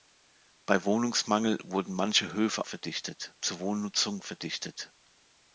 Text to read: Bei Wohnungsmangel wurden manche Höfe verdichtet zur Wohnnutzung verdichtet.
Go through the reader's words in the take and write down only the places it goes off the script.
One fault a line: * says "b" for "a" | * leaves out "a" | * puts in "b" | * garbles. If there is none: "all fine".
all fine